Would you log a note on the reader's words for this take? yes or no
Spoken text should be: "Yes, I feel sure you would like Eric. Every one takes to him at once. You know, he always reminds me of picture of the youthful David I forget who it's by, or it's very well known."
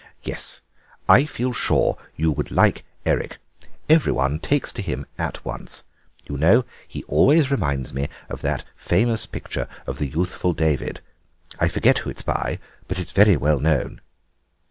yes